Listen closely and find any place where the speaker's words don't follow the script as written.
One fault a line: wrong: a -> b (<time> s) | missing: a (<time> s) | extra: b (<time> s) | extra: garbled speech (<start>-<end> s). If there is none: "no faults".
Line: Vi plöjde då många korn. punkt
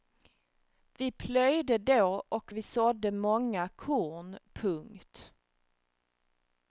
extra: och vi sådde (2.3 s)